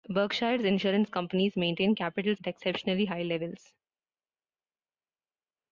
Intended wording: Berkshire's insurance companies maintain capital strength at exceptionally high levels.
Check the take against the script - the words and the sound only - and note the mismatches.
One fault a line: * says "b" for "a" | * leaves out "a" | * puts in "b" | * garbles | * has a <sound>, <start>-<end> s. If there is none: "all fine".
* leaves out "strength"